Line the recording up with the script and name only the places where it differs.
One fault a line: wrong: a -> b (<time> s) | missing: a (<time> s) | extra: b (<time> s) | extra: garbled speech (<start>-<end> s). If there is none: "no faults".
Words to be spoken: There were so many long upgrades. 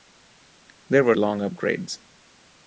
missing: so many (1.1 s)